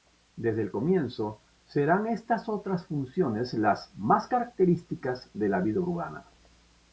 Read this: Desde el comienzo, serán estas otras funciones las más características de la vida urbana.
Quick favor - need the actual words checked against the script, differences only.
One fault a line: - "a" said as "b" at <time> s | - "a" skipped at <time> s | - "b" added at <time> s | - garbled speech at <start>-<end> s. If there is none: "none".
none